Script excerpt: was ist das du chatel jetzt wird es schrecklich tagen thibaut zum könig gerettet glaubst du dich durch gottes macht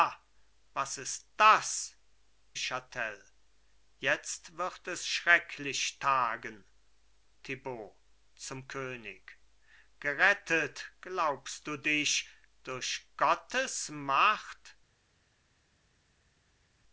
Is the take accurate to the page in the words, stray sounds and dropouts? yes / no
no